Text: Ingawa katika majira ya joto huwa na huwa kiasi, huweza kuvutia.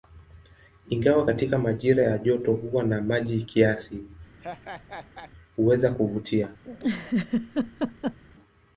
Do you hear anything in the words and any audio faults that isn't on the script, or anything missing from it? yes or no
yes